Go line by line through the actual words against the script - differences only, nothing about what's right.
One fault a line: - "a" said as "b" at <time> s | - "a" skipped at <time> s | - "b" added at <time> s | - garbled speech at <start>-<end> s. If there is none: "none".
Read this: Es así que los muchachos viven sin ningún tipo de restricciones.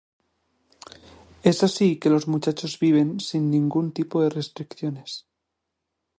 none